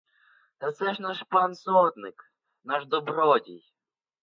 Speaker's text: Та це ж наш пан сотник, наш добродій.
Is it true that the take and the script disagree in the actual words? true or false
false